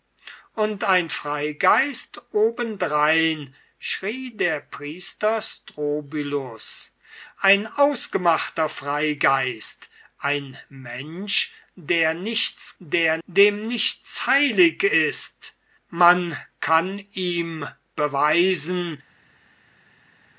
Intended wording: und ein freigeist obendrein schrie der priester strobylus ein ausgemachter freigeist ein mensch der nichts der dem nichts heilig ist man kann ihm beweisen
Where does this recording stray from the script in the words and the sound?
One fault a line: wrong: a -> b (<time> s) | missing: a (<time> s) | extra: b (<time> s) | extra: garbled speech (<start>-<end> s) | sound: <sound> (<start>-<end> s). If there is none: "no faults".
no faults